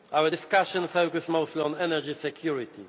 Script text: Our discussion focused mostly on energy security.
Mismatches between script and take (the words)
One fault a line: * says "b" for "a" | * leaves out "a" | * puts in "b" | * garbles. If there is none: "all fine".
all fine